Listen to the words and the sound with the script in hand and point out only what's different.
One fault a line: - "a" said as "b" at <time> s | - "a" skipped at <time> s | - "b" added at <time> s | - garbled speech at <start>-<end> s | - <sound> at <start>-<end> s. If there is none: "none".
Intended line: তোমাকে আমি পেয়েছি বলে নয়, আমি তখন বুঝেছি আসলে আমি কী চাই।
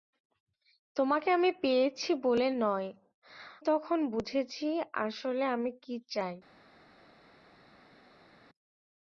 - "আমি" skipped at 2.9 s